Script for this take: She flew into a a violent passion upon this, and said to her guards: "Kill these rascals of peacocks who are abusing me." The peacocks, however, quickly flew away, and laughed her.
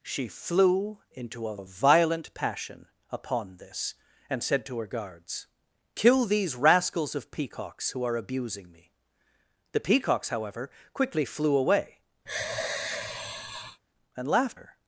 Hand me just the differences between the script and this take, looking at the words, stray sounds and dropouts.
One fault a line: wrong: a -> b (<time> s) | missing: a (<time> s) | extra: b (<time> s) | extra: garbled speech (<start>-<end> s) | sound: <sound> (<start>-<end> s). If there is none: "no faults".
sound: sigh (12.3-13.8 s)